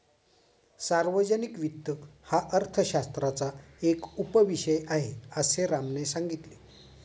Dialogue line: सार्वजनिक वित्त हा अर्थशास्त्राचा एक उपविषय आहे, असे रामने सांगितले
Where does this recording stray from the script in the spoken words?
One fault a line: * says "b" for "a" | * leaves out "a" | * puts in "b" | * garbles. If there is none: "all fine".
all fine